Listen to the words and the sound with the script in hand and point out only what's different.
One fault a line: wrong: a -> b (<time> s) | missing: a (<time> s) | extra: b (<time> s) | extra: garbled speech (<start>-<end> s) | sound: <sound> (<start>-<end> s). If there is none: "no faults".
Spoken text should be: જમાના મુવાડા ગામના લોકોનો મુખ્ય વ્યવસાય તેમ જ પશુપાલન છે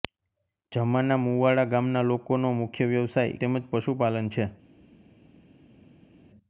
no faults